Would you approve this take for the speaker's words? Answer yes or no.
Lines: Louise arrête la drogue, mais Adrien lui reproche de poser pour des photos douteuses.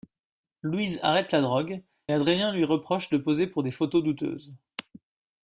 no